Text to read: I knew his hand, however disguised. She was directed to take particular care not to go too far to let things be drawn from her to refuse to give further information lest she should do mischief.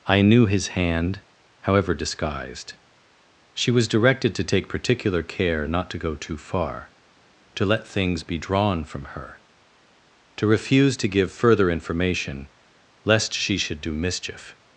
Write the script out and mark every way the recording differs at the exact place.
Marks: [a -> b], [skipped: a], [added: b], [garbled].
I knew his hand, however disguised. She was directed to take particular care not to go too far to let things be drawn from her to refuse to give further information lest she should do mischief.